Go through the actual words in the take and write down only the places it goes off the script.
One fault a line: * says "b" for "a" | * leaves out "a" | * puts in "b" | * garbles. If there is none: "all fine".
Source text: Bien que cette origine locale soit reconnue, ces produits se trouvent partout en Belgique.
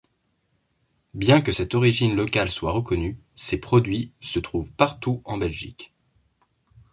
all fine